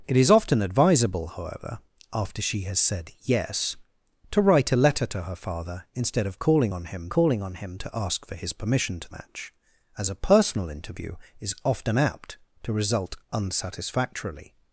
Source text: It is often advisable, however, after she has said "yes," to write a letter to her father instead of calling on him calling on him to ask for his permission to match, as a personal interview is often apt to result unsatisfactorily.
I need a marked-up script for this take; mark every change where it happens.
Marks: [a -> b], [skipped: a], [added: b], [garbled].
It is often advisable, however, after she has said "yes," to write a letter to her father instead of calling on him calling on him to ask for his permission to match, as a personal interview is often apt to result unsatisfactorily.